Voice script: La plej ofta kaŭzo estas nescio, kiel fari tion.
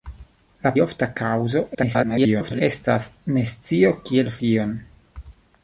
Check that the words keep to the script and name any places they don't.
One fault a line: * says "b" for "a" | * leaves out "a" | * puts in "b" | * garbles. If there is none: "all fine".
* leaves out "plej"
* garbles
* leaves out "fari"